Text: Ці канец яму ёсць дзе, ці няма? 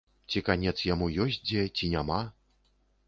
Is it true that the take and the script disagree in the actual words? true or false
false